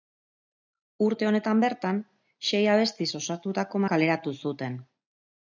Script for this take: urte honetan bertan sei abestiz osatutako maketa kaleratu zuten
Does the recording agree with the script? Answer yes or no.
no